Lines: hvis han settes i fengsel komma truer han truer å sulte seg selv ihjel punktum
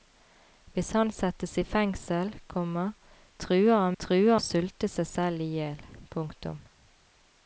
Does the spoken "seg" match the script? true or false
true